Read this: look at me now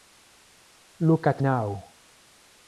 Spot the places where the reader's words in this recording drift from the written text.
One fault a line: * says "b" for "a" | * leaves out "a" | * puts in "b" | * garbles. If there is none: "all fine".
* leaves out "me"